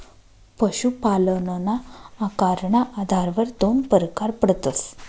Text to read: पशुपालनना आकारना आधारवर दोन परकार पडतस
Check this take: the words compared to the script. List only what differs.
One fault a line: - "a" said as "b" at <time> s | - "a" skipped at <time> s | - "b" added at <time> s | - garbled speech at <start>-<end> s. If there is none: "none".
none